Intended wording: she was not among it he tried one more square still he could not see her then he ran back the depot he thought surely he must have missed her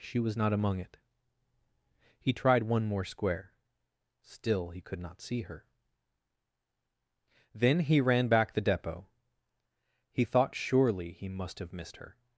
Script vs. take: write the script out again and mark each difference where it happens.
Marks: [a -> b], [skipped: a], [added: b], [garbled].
she was not among it he tried one more square still he could not see her then he ran back the depot he thought surely he must have missed her